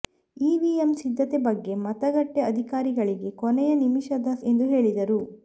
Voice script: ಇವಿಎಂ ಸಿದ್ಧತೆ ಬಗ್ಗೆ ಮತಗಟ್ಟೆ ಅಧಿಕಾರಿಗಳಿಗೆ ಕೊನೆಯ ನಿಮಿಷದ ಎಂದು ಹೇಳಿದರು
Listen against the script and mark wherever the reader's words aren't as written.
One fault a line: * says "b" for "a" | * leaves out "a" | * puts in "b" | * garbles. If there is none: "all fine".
all fine